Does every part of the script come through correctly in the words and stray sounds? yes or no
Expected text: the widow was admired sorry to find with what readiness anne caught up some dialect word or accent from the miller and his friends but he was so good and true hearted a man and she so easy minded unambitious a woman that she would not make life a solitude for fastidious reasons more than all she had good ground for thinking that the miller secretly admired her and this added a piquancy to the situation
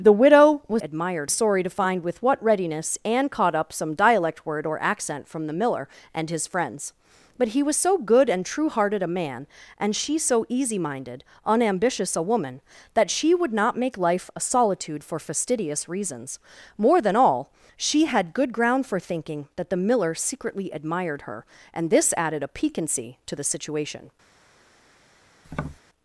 no